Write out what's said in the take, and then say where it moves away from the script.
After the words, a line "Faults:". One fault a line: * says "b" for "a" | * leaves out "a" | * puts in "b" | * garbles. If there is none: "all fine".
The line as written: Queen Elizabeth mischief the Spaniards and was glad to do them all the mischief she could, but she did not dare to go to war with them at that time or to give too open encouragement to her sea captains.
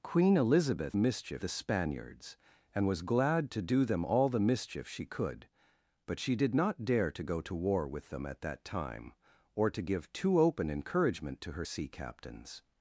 Queen Elizabeth mischief the Spaniards and was glad to do them all the mischief she could, but she did not dare to go to war with them at that time or to give too open encouragement to her sea captains.
Faults:
all fine